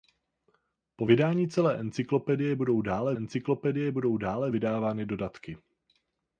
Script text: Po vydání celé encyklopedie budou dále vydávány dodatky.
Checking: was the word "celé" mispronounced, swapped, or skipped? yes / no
no